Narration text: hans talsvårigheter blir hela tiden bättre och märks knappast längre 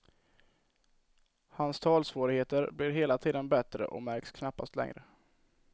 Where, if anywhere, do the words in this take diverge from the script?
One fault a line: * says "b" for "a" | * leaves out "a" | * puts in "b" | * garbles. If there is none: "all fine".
all fine